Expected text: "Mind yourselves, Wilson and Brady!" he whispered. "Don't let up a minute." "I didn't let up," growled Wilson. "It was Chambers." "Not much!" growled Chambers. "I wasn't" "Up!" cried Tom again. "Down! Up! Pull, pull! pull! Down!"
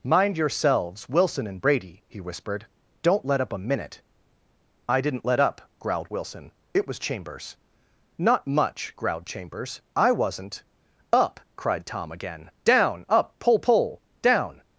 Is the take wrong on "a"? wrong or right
right